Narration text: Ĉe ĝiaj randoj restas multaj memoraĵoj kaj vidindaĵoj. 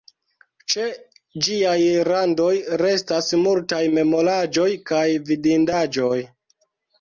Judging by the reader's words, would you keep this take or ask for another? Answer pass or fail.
pass